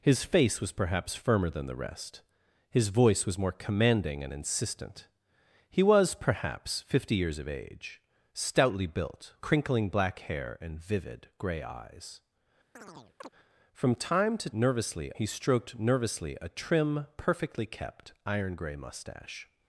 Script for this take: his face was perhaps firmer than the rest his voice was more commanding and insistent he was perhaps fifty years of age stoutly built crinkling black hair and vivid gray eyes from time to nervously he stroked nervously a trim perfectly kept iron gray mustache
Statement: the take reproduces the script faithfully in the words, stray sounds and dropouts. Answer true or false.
false